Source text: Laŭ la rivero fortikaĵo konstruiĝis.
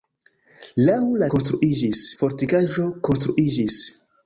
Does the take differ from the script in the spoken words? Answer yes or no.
yes